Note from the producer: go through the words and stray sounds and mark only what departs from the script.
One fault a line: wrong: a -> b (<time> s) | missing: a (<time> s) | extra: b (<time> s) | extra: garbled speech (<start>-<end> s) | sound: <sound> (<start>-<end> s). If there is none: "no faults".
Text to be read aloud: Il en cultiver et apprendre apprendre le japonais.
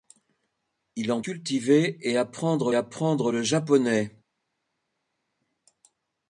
no faults